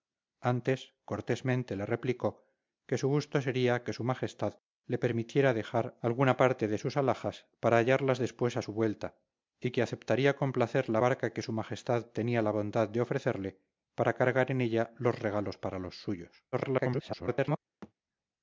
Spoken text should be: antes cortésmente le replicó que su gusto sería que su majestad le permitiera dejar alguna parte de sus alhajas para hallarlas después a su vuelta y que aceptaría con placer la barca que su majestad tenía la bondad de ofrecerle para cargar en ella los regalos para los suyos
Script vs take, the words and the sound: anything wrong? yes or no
yes